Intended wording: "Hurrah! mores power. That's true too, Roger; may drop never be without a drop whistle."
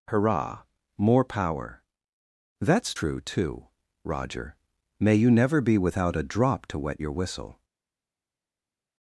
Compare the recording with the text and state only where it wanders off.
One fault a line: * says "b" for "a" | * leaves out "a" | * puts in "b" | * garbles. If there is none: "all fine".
* says "more" for "mores"
* says "you" for "drop"
* puts in "to wet your"